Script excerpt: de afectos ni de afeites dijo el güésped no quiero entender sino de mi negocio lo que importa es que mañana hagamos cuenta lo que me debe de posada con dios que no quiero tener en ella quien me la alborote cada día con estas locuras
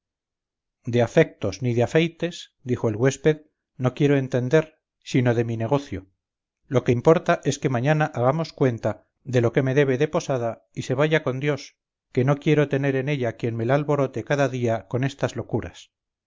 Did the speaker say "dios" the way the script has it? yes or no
yes